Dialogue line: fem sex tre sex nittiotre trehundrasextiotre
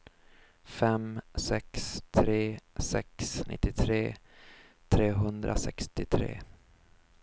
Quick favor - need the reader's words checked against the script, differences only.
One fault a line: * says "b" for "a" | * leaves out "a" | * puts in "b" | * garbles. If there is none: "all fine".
all fine